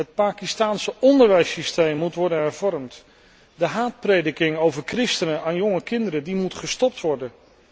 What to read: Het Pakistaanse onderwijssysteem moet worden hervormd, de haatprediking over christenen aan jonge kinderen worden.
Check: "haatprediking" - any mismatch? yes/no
no